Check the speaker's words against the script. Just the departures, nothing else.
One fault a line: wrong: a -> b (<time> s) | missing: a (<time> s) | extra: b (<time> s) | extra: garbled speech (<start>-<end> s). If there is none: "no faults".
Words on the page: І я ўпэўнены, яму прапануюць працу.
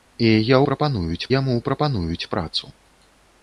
wrong: ўпэўнены -> прапануюць (0.7 s)